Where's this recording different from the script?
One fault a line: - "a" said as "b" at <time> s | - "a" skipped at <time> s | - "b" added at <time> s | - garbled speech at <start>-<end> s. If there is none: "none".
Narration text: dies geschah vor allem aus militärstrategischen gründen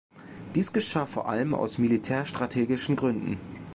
none